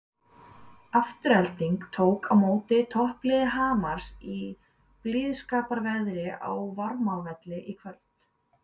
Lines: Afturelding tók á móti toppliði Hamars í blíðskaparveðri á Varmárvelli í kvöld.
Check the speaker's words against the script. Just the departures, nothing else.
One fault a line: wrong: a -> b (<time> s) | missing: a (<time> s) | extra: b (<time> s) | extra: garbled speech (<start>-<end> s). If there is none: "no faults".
no faults